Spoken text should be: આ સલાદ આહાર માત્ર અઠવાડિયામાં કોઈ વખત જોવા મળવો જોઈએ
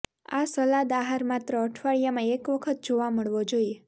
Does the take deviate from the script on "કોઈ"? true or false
true